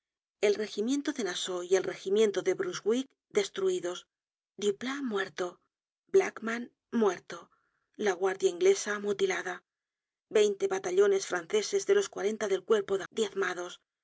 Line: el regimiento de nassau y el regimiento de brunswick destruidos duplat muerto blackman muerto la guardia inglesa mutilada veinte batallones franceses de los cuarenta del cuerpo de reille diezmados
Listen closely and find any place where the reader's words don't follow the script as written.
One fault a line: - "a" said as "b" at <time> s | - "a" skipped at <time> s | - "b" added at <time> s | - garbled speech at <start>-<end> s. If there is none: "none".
- "reille" skipped at 13.0 s